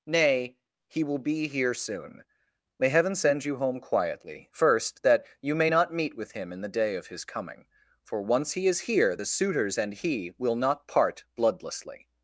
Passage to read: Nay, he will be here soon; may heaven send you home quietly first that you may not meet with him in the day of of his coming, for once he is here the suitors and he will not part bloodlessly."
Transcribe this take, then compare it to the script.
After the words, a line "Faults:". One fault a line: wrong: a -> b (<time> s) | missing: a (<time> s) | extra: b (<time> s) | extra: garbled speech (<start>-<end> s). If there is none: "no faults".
Nay, he will be here soon; may heaven send you home quietly first that you may not meet with him in the day of his coming, for once he is here the suitors and he will not part bloodlessly."
Faults:
missing: of (7.1 s)